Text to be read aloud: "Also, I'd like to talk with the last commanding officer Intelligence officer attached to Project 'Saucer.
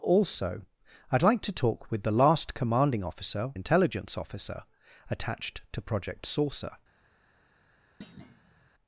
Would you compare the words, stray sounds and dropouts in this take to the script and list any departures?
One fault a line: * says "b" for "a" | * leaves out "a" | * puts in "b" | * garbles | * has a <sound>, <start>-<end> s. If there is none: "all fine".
* has a thud, 8.0-8.7 s